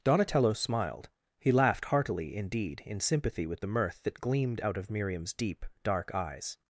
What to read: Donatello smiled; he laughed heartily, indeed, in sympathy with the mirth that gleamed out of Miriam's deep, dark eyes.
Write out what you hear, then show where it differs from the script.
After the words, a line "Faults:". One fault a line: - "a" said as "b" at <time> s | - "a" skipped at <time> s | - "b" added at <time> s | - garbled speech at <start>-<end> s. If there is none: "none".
Donatello smiled; he laughed heartily, indeed, in sympathy with the mirth that gleamed out of Miriam's deep, dark eyes.
Faults:
none